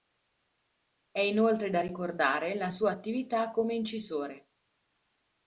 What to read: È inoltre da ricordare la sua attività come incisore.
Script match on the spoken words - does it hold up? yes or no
yes